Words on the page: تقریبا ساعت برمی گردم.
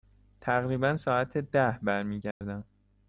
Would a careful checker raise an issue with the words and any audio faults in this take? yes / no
yes